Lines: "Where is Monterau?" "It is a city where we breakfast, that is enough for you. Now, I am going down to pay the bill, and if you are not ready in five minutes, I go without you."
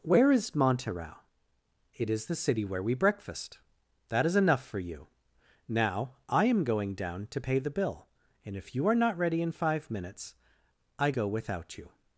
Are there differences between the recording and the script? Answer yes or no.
yes